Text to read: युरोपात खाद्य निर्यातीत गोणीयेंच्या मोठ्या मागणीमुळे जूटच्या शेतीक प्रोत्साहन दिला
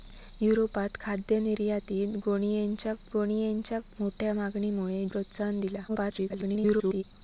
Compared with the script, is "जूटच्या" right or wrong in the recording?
wrong